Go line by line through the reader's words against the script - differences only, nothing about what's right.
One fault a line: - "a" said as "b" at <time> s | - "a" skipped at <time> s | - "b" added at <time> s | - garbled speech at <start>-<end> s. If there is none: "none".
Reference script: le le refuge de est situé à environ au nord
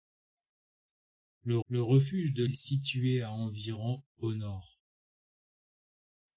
none